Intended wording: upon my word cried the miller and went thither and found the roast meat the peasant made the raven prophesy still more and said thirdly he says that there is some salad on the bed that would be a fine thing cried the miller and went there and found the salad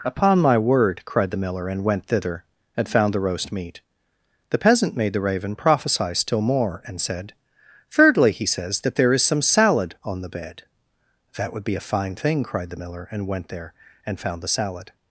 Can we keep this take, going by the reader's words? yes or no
yes